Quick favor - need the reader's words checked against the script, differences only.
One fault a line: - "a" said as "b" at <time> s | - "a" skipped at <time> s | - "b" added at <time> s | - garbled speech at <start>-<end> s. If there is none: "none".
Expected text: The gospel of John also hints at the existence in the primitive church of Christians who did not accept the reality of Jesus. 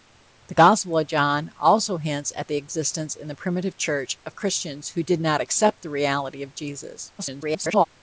- garbled speech at 7.2-7.9 s